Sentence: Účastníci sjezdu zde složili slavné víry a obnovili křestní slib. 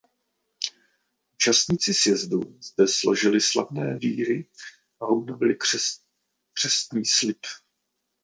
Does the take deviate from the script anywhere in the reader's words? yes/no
no